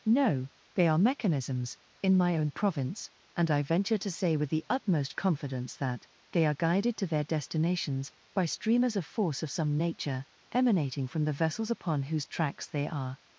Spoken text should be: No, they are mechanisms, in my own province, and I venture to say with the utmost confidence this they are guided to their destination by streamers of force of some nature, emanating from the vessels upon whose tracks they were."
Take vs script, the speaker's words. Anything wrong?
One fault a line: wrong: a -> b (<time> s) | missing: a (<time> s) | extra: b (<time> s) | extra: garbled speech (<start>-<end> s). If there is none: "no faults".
wrong: this -> that (5.8 s)
wrong: destination -> destinations (7.2 s)
wrong: were -> are (12.9 s)